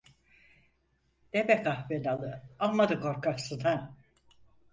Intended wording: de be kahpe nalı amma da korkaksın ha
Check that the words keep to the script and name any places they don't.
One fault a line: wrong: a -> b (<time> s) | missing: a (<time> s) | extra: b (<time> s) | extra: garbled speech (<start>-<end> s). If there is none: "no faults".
no faults